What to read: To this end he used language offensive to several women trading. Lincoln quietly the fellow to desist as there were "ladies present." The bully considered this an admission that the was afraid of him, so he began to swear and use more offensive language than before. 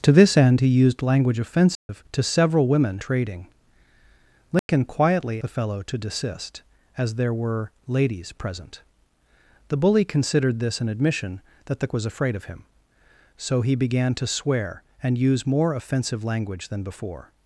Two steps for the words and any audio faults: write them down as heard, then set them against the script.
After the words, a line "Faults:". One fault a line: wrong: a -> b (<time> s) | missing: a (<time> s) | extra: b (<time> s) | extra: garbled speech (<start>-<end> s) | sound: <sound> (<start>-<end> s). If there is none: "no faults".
To this end he used language offensive to several women trading. Lincoln quietly the fellow to desist as there were "ladies present." The bully considered this an admission that the was afraid of him, so he began to swear and use more offensive language than before.
Faults:
sound: dropout (1.7-1.9 s)
sound: dropout (4.6-4.7 s)